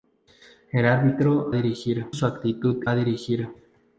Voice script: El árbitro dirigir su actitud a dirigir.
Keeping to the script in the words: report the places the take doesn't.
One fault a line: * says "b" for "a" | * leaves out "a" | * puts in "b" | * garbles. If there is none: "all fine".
all fine